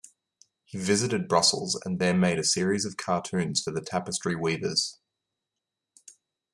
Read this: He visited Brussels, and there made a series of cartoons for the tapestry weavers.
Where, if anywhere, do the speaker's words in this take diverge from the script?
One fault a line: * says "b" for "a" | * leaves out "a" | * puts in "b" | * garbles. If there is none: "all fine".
all fine